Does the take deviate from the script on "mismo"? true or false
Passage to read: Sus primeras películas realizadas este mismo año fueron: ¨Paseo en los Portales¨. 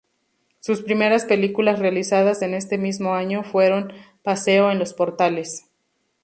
false